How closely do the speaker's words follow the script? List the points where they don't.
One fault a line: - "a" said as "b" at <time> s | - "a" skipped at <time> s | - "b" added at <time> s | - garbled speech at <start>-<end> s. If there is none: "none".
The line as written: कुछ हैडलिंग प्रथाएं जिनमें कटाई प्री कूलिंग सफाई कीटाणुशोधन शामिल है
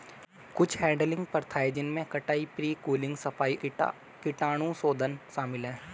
none